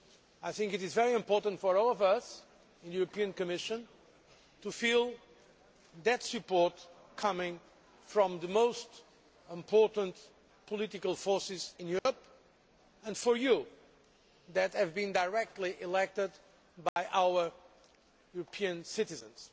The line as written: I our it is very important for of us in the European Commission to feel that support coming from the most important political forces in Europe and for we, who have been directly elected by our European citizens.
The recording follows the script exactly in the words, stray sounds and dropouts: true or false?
false